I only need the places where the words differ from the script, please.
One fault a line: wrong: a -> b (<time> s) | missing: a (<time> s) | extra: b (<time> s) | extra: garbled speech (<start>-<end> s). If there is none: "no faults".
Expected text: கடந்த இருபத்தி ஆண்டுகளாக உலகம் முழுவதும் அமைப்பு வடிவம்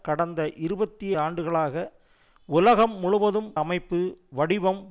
no faults